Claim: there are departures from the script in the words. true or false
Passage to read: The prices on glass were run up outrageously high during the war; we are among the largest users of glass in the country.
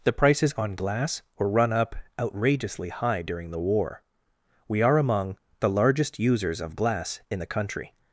false